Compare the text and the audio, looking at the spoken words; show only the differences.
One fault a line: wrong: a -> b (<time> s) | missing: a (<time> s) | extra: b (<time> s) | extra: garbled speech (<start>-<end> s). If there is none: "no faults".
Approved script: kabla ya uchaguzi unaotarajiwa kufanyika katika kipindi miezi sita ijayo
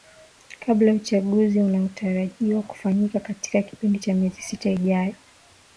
extra: cha (4.0 s)